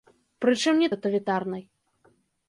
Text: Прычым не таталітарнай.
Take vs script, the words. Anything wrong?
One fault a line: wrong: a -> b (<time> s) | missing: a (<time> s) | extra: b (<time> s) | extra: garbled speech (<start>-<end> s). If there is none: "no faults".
no faults